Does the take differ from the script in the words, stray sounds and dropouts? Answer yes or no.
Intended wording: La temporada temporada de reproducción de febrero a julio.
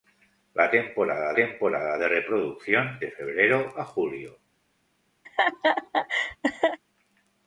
yes